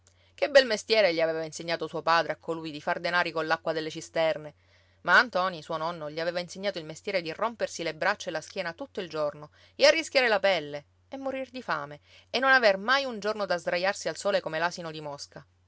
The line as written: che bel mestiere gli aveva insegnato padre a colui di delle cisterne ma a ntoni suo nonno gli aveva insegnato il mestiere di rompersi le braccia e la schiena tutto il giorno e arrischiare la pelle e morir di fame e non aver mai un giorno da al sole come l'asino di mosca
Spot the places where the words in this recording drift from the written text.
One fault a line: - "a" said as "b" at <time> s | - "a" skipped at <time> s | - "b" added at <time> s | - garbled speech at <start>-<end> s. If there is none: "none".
- "suo" added at 1.9 s
- "far denari coll'acqua" added at 2.8 s
- "sdraiarsi" added at 13.6 s